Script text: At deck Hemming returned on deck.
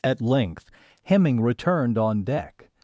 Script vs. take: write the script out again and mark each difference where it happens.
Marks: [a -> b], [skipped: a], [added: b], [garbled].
At [deck -> length] Hemming returned on deck.